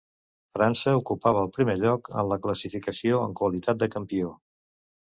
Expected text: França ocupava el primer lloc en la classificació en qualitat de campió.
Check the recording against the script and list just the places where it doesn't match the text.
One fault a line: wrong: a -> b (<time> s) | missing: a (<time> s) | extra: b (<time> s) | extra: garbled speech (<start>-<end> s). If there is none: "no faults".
no faults